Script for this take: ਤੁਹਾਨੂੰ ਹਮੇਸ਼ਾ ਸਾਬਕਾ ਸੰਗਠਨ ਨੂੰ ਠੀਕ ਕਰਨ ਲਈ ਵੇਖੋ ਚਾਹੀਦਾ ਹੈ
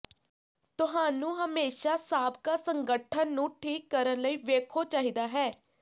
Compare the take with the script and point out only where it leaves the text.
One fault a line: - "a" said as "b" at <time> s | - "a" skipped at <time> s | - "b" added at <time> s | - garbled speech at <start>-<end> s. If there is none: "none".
none